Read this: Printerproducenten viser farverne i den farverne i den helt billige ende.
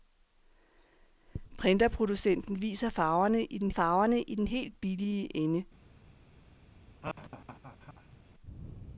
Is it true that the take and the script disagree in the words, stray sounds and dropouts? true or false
true